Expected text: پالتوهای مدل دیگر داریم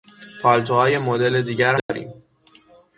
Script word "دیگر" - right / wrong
right